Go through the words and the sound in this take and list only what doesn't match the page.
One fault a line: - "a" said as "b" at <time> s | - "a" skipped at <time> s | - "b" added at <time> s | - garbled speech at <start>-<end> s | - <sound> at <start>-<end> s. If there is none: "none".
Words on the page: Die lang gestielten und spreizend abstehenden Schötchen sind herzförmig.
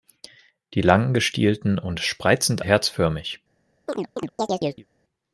- "abstehenden Schötchen sind" skipped at 2.6 s
- chirp at 3.9-4.9 s